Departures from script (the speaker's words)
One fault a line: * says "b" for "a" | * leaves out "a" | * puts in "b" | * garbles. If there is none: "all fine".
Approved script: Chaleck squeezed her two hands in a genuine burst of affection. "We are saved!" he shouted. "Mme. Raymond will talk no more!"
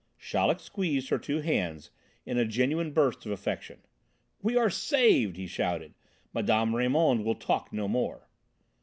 all fine